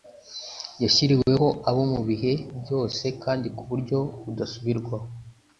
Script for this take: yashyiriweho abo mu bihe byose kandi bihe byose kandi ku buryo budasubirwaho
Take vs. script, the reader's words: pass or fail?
fail